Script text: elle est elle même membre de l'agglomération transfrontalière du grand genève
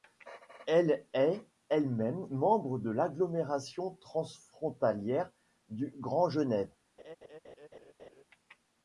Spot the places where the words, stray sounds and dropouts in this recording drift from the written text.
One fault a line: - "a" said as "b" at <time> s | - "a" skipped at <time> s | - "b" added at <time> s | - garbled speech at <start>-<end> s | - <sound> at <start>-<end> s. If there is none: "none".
- laugh at 7.0-8.2 s